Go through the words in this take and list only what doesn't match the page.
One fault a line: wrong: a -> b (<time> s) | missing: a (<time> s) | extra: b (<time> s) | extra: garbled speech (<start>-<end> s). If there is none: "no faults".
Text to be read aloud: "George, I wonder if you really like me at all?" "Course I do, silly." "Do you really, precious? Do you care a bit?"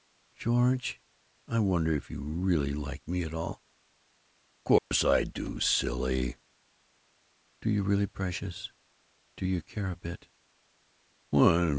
no faults